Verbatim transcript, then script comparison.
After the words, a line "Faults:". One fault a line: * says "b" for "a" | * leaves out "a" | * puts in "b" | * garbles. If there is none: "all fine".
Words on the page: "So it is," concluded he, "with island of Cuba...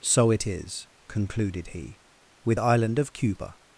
"So it is," concluded he, "with island of Cuba...
Faults:
all fine